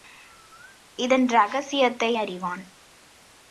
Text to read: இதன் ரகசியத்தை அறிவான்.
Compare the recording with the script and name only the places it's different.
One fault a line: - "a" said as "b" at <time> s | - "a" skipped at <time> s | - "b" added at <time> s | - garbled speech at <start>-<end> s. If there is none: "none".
none